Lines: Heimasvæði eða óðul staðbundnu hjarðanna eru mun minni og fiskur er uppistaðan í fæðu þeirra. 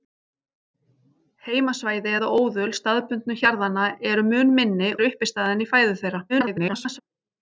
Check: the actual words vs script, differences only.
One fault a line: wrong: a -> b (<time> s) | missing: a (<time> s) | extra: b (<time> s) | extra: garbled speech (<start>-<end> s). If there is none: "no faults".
missing: og fiskur (4.9 s)
extra: garbled speech (6.3-7.0 s)